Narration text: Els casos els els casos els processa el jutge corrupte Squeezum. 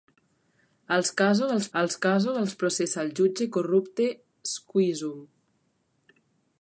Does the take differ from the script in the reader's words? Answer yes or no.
no